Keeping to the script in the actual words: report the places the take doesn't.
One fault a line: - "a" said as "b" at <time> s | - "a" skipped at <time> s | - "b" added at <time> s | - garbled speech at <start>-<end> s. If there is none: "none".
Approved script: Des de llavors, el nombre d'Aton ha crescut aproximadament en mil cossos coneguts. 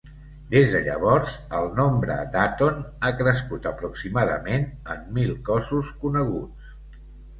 none